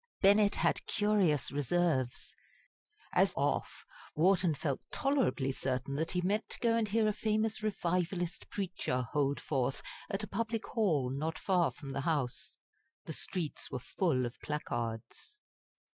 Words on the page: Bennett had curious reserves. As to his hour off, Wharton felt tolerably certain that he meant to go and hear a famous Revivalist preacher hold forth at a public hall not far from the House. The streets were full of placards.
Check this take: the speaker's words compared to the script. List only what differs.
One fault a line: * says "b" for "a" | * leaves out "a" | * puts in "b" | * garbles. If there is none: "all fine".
* leaves out "to his hour"